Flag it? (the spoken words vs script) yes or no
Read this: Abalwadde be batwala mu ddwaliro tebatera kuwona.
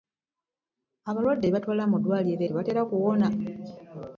no